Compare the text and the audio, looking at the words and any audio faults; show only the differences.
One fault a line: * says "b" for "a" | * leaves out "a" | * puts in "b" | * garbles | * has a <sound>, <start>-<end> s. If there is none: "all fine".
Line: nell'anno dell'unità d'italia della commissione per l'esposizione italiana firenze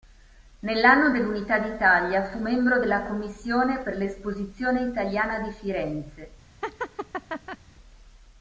* puts in "fu membro"
* puts in "di"
* has a laugh, 6.6-7.6 s